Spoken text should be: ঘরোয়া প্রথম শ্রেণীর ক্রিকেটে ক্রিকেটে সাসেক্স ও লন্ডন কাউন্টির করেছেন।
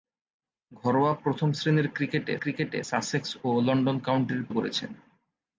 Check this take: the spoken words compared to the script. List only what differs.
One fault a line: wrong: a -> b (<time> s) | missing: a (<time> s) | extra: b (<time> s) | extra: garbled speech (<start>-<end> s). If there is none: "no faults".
no faults